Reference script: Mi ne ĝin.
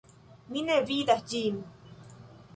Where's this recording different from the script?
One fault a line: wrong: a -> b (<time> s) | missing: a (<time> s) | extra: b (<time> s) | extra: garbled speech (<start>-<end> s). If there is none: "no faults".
extra: vidas (0.9 s)